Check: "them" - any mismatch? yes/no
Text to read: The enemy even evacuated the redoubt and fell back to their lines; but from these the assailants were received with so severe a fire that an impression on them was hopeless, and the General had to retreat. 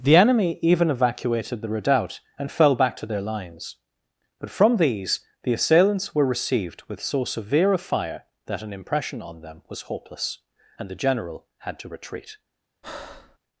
no